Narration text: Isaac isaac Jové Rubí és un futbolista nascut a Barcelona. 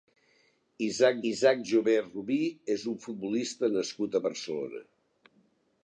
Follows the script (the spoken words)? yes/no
yes